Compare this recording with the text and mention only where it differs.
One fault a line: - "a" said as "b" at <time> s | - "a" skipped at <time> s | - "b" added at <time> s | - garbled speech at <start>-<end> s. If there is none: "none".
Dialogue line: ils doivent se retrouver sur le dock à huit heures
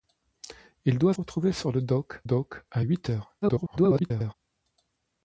- "se" skipped at 1.1 s
- "dock" added at 2.2 s
- garbled speech at 3.4-4.3 s